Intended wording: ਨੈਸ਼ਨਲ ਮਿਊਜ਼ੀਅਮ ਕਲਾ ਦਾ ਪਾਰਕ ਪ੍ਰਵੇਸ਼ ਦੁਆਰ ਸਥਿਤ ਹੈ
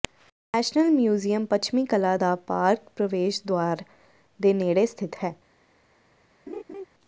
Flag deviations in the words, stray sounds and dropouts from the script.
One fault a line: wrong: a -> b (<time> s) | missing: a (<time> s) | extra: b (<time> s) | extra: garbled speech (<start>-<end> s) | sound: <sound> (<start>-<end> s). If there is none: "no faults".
extra: ਪੱਛਮੀ (1.4 s)
extra: ਦੇ ਨੇੜੇ (4.4 s)
sound: laugh (6.5-6.8 s)